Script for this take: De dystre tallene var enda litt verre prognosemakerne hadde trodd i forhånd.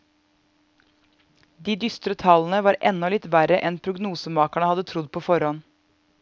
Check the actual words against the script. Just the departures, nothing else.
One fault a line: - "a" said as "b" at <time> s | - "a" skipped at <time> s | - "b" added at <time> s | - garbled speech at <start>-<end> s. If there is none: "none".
- "enn" added at 3.7 s
- "i" said as "på" at 5.1 s